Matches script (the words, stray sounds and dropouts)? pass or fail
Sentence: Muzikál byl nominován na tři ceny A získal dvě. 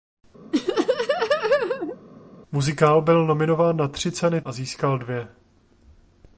fail